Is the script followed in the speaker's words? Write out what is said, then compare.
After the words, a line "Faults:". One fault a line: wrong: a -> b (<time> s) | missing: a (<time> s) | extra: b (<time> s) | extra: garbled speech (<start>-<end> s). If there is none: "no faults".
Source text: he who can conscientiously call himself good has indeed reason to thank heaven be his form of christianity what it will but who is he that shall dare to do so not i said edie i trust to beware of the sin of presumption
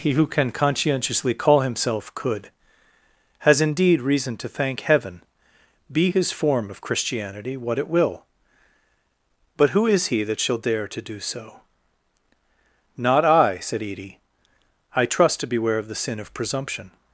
he who can conscientiously call himself could has indeed reason to thank heaven be his form of christianity what it will but who is he that shall dare to do so not i said edie i trust to beware of the sin of presumption
Faults:
wrong: good -> could (2.1 s)